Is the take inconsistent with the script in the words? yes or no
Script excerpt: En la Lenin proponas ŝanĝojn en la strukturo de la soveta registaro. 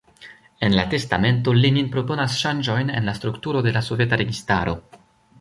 yes